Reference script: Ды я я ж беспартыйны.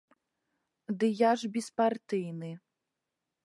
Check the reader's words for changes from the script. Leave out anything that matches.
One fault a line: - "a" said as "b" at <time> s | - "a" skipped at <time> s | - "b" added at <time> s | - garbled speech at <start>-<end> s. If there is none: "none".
- "я" skipped at 1.3 s